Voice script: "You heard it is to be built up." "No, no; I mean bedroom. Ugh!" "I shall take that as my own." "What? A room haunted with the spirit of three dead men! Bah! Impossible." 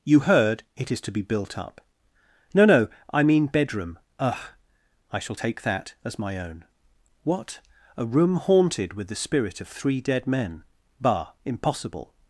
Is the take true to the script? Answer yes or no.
yes